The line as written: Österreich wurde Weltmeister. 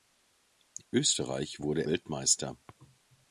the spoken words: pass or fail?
pass